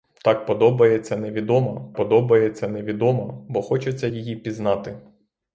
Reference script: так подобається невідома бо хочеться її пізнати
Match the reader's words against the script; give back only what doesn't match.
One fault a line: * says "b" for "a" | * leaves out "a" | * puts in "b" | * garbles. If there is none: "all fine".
* puts in "подобається невідома"